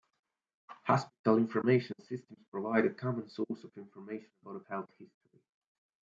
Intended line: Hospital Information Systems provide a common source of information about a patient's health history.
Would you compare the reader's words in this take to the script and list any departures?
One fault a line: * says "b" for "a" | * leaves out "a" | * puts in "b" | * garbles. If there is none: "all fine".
* leaves out "patient's"